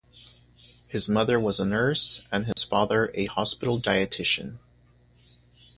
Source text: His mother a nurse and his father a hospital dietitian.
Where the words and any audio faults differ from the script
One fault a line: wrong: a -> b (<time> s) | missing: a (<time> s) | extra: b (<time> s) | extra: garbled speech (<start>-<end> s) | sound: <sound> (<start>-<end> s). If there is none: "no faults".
extra: was (1.4 s)
sound: dropout (2.5-2.6 s)